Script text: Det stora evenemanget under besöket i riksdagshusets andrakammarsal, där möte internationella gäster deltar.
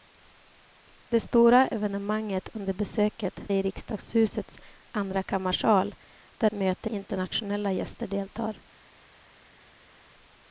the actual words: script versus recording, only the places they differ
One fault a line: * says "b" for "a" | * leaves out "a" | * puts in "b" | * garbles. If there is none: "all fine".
all fine